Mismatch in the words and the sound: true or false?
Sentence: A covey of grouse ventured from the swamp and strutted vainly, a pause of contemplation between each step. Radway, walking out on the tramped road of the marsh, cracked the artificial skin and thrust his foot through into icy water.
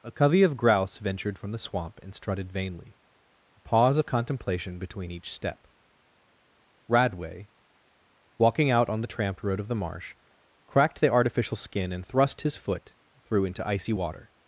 false